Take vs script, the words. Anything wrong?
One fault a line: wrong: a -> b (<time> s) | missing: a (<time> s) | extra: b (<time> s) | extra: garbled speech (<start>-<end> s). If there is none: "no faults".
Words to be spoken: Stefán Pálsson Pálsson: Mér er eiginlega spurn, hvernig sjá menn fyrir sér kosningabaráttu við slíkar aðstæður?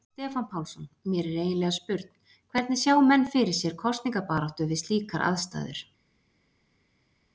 missing: Pálsson (0.8 s)